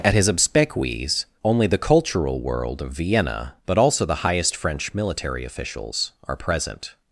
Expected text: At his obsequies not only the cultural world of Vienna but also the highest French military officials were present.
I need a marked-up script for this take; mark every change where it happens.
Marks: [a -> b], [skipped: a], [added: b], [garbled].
At his obsequies [skipped: not] only the cultural world of Vienna but also the highest French military officials [were -> are] present.